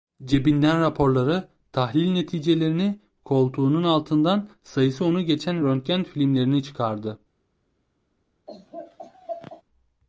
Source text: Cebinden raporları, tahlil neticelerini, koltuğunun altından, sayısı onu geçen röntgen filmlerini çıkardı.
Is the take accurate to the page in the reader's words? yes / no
yes